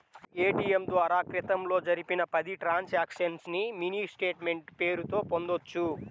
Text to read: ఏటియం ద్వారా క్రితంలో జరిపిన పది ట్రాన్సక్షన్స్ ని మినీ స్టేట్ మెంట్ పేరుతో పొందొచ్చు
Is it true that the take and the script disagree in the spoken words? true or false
false